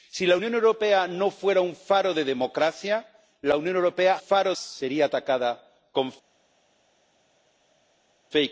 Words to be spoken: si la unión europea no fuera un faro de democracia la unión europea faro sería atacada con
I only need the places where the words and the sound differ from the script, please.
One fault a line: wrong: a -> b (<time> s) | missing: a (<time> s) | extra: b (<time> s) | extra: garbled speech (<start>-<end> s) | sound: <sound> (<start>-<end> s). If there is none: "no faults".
no faults